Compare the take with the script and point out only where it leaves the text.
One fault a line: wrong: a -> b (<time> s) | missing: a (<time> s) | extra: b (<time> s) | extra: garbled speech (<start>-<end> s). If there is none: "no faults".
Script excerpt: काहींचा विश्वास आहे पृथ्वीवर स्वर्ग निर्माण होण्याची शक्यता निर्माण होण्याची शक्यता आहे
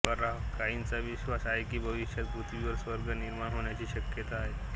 extra: की भविष्यात (1.6 s)
missing: निर्माण होण्याची शक्यता (4.4 s)